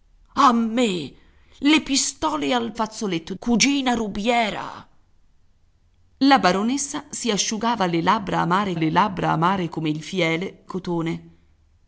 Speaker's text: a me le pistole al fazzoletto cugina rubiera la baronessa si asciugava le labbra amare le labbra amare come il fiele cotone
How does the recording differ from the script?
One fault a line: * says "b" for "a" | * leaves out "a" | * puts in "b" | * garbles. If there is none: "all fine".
all fine